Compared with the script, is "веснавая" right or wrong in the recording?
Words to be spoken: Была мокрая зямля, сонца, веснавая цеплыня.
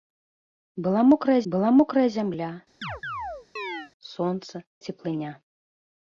wrong